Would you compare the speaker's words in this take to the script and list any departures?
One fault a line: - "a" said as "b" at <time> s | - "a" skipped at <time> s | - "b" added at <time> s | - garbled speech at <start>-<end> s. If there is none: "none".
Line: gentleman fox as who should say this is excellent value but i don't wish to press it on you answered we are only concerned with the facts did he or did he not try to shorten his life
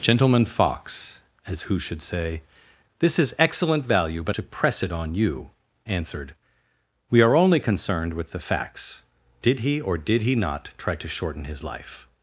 - "i don't wish" skipped at 4.3 s